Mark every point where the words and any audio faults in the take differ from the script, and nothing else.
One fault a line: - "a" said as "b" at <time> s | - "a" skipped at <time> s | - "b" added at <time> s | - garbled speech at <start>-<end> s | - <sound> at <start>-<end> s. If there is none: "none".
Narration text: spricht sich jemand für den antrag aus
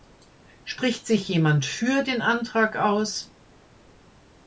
none